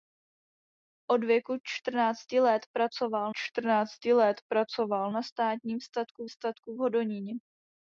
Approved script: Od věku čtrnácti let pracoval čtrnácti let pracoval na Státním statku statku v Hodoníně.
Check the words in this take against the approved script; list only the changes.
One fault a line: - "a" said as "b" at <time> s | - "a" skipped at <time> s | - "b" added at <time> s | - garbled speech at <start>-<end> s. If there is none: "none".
none